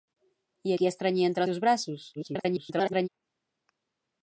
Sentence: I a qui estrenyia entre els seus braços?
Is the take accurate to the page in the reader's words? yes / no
no